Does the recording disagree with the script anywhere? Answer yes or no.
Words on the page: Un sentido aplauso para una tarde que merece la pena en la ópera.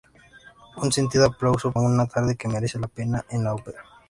yes